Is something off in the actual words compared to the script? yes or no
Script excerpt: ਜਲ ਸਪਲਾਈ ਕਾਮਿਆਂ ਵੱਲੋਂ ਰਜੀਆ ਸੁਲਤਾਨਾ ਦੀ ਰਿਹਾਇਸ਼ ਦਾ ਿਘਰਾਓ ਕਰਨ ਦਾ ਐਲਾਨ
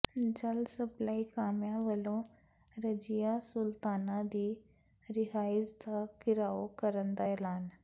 no